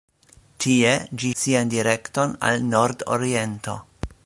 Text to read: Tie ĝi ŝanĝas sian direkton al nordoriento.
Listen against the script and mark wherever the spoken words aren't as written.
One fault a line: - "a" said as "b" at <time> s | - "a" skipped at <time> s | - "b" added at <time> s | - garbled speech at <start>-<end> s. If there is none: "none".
- "ŝanĝas" skipped at 1.3 s